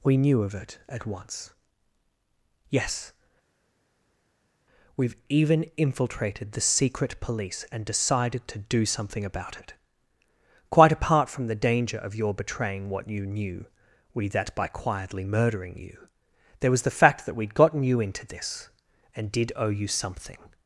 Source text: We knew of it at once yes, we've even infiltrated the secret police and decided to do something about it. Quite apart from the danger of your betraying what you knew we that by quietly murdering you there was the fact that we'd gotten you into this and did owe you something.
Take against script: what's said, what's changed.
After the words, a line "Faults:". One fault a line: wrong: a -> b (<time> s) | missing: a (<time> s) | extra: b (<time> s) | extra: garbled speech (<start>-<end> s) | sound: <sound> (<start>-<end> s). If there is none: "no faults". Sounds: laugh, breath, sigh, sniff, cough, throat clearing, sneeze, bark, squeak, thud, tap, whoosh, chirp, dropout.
We knew of it at once yes, we've even infiltrated the secret police and decided to do something about it. Quite apart from the danger of your betraying what you knew we that by quietly murdering you there was the fact that we'd gotten you into this and did owe you something.
Faults:
no faults